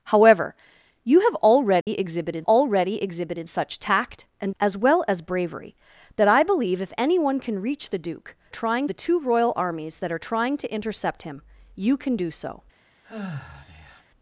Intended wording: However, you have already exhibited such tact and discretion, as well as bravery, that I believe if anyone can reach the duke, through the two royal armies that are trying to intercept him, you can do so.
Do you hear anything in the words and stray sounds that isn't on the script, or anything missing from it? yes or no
yes